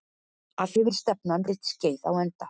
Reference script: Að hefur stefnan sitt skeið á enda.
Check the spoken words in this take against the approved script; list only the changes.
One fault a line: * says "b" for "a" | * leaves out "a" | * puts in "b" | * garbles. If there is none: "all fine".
all fine